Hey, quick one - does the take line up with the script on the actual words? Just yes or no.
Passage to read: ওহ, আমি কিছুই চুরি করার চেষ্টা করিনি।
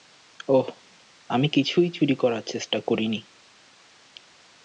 yes